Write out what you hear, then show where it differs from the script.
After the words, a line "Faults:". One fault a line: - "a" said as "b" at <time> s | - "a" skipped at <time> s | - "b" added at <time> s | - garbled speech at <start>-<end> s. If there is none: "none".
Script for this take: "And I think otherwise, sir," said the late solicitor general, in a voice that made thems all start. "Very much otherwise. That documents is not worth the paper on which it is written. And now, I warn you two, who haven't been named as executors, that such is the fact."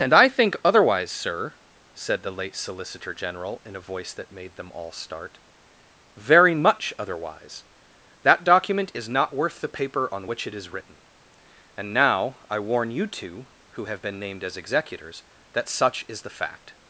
"And I think otherwise, sir," said the late solicitor general, in a voice that made them all start. "Very much otherwise. That document is not worth the paper on which it is written. And now, I warn you two, who have been named as executors, that such is the fact."
Faults:
- "thems" said as "them" at 4.5 s
- "documents" said as "document" at 8.4 s
- "haven't" said as "have" at 13.9 s